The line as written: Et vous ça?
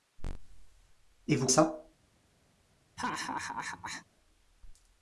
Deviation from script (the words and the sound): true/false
true